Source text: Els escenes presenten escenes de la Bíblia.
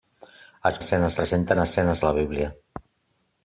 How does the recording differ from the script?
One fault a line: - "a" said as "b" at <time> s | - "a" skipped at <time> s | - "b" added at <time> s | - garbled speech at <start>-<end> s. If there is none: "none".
none